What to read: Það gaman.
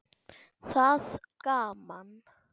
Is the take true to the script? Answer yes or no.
yes